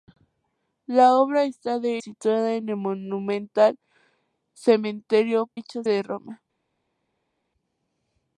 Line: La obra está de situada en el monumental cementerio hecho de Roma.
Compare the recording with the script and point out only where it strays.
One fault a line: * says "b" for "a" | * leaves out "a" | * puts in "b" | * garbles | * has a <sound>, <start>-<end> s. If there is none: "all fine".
all fine